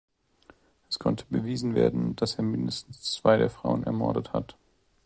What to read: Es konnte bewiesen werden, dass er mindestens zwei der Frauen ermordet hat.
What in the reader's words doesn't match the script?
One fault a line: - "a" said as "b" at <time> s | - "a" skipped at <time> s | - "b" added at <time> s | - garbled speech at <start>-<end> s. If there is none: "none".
none